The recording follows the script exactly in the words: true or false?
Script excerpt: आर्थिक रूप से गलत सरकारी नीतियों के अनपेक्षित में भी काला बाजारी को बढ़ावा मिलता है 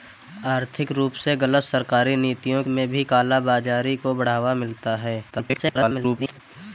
false